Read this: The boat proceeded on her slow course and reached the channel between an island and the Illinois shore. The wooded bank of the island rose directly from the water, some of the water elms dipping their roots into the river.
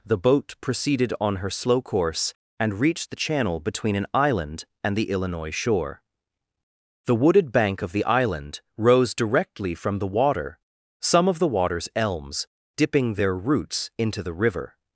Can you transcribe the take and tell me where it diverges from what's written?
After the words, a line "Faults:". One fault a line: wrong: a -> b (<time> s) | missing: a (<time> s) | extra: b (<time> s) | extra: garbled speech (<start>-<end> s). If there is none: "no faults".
The boat proceeded on her slow course and reached the channel between an island and the Illinois shore. The wooded bank of the island rose directly from the water, some of the waters elms dipping their roots into the river.
Faults:
wrong: water -> waters (11.5 s)